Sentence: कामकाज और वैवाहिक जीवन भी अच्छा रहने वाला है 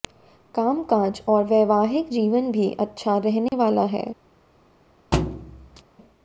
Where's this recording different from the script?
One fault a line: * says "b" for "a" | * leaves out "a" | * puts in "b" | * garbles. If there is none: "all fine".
all fine